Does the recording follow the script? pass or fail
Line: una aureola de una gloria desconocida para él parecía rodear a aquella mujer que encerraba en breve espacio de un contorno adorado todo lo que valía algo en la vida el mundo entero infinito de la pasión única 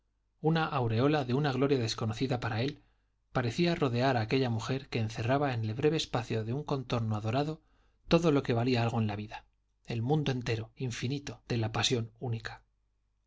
fail